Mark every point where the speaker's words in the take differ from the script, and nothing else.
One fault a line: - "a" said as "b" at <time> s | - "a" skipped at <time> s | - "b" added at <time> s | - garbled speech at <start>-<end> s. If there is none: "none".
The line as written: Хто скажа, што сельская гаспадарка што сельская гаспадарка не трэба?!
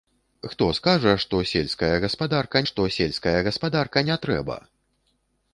none